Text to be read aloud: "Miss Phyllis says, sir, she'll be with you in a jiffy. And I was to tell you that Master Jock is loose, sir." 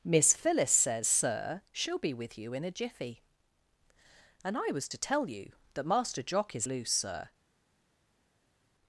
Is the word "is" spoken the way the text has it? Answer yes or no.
yes